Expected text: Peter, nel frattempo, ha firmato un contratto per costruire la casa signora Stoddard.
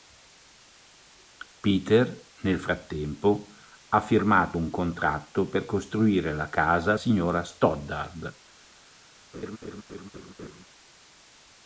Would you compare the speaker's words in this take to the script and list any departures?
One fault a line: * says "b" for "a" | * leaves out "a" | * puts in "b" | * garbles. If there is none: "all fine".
all fine